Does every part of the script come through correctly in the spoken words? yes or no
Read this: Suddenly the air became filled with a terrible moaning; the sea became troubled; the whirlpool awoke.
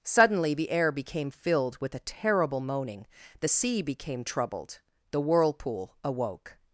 yes